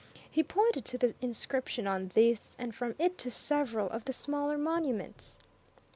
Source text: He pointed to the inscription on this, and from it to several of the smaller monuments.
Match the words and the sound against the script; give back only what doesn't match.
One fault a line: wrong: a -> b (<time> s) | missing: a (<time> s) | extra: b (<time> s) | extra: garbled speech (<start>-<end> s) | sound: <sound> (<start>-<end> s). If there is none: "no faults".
no faults